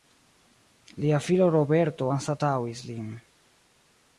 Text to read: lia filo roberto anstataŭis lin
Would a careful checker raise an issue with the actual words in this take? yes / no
no